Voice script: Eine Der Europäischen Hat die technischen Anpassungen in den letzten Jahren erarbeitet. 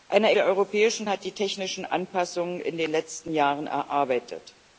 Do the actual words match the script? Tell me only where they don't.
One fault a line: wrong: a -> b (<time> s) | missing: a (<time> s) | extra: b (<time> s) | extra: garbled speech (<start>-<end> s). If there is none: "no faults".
no faults